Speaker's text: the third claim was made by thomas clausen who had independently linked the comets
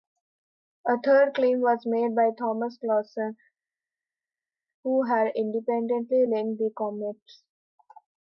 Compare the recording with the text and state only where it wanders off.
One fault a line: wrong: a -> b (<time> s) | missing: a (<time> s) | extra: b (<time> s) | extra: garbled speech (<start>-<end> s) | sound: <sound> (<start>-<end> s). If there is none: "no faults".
wrong: the -> a (0.9 s)